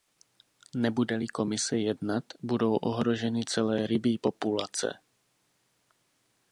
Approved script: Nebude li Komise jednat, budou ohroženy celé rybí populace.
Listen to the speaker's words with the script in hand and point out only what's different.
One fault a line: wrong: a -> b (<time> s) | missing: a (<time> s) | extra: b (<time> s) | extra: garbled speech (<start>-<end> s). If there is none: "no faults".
no faults